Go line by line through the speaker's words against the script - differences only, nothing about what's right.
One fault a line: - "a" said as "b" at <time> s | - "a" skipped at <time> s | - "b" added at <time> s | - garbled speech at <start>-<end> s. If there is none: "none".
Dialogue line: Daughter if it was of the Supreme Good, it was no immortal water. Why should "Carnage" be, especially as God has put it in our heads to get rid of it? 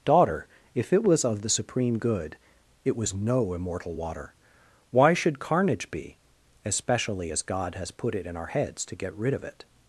none